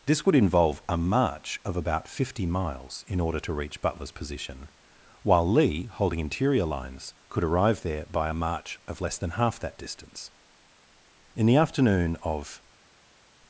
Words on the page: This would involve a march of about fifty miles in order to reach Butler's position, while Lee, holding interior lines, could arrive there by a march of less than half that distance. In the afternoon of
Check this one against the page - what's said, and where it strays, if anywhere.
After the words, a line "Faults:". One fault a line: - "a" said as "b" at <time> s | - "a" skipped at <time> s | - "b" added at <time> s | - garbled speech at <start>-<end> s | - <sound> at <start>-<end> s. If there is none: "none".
This would involve a march of about fifty miles in order to reach Butler's position, while Lee, holding interior lines, could arrive there by a march of less than half that distance. In the afternoon of
Faults:
none